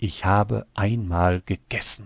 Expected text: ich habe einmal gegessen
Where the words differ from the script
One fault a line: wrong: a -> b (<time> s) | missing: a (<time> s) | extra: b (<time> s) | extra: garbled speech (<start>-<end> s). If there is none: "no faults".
no faults